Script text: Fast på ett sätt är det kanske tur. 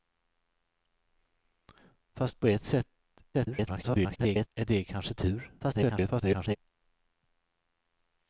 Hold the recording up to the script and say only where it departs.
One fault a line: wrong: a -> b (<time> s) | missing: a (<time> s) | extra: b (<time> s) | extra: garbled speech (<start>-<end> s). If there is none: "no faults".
extra: garbled speech (3.3-4.5 s)
extra: garbled speech (5.6-6.6 s)